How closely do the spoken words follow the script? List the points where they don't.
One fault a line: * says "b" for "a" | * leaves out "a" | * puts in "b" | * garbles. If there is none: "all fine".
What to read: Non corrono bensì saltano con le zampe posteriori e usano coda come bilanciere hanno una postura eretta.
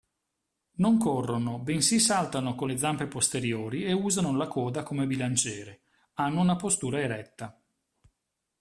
* puts in "la"